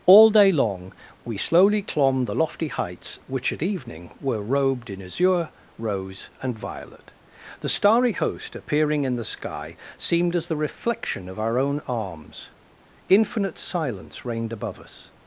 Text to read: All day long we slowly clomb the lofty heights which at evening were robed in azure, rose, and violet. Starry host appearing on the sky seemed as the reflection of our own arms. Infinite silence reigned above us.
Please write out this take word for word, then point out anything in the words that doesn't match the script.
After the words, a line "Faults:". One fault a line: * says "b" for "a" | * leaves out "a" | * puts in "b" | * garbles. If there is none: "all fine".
All day long we slowly clomb the lofty heights which at evening were robed in azure, rose, and violet. The starry host appearing in the sky seemed as the reflection of our own arms. Infinite silence reigned above us.
Faults:
* puts in "The"
* says "in" for "on"